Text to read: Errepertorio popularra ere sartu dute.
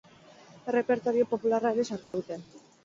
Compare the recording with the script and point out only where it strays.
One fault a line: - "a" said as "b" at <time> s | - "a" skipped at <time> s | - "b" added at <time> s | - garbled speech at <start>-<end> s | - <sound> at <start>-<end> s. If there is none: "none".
- dropout at 2.0-2.1 s